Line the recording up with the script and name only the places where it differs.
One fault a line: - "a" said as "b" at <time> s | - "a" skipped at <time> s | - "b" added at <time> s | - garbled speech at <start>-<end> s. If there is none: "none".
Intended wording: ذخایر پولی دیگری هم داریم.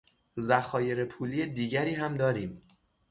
none